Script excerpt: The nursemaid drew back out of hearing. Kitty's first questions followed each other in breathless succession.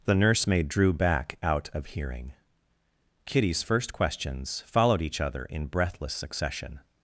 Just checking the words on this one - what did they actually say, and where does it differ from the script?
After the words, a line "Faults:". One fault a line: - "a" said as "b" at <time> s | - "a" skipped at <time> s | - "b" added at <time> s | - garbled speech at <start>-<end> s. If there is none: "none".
The nursemaid drew back out of hearing. Kitty's first questions followed each other in breathless succession.
Faults:
none